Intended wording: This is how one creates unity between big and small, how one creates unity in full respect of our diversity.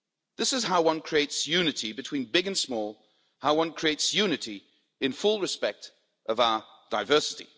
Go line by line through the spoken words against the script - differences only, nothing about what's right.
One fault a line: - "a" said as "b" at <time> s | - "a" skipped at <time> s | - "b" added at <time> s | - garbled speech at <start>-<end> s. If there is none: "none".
none